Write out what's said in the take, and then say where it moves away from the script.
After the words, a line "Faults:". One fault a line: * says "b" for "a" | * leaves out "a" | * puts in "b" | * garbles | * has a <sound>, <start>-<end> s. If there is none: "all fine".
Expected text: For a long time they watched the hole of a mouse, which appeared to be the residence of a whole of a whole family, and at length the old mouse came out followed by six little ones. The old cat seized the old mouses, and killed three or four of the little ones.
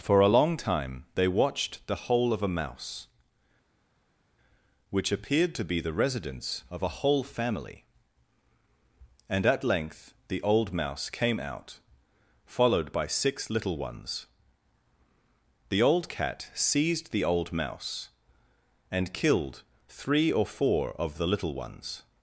For a long time they watched the hole of a mouse, which appeared to be the residence of a whole family, and at length the old mouse came out followed by six little ones. The old cat seized the old mouse, and killed three or four of the little ones.
Faults:
* leaves out "of a whole"
* says "mouse" for "mouses"